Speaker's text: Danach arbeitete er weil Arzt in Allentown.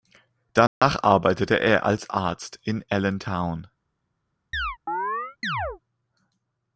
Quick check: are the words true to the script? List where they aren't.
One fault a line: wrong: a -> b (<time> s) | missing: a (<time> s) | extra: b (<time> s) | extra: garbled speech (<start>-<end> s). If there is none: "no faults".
wrong: weil -> als (1.8 s)